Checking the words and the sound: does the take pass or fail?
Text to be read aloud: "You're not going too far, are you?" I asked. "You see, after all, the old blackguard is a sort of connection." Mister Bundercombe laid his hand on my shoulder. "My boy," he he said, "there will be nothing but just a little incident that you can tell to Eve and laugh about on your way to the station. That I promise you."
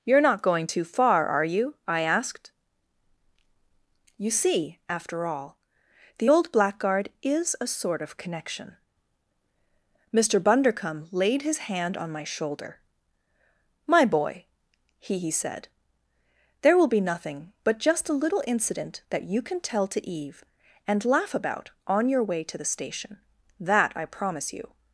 pass